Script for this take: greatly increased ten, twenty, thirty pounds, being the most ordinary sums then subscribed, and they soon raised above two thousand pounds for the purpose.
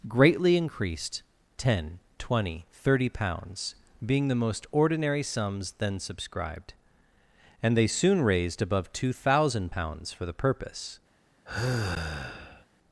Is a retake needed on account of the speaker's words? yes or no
no